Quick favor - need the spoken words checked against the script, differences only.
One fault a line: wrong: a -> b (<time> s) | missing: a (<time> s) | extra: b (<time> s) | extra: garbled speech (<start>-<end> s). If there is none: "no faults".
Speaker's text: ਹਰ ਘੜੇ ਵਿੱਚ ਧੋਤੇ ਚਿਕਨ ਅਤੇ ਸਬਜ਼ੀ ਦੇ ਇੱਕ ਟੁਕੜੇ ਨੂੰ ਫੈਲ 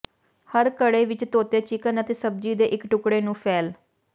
no faults